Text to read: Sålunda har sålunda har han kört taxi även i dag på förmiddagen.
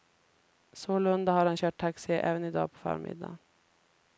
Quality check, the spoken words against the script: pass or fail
fail